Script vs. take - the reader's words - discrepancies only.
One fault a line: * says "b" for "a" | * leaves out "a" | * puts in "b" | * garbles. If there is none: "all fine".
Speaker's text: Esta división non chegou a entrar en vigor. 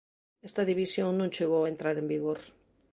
all fine